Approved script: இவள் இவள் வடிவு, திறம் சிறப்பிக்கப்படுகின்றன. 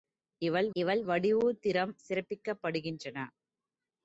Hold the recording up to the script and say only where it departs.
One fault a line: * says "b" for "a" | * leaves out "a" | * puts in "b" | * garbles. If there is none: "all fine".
all fine